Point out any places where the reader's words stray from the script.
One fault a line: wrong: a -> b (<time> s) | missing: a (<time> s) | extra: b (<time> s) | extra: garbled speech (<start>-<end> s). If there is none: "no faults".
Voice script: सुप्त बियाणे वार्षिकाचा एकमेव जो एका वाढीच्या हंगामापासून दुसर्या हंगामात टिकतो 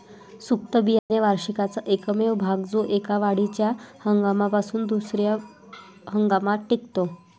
extra: भाग (2.4 s)